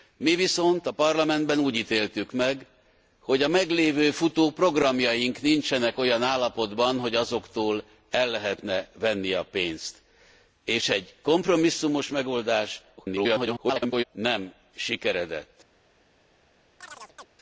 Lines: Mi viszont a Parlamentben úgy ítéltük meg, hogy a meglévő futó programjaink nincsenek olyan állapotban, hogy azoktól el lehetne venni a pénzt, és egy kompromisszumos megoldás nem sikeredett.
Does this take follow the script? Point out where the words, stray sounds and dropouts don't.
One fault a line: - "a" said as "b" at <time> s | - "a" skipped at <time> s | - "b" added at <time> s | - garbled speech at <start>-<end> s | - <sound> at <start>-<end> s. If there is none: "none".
- garbled speech at 13.0-14.0 s
- chirp at 16.8-17.3 s